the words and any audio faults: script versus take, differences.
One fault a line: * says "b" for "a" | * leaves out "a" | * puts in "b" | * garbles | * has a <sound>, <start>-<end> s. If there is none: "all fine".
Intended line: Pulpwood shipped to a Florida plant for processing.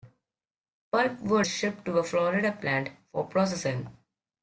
all fine